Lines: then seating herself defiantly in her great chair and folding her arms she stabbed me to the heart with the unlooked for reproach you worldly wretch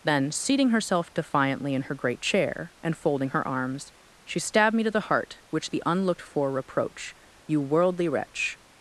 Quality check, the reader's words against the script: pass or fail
fail